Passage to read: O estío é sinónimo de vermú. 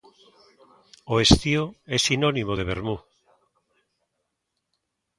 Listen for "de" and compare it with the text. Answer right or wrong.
right